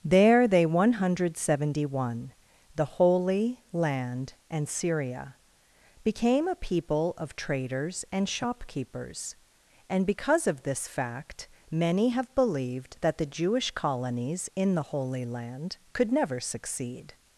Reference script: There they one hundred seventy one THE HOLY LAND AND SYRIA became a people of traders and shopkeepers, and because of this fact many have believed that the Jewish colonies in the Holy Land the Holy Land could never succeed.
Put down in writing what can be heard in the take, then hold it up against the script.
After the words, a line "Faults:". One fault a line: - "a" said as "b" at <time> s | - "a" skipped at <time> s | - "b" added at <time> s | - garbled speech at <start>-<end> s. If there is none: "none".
There they one hundred seventy one THE HOLY LAND AND SYRIA became a people of traders and shopkeepers, and because of this fact many have believed that the Jewish colonies in the Holy Land could never succeed.
Faults:
- "the Holy Land" skipped at 15.8 s